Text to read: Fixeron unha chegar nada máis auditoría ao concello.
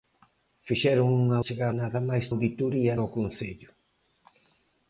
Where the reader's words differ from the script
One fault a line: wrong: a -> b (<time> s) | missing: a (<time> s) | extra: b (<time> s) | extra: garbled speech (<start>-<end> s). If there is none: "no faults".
no faults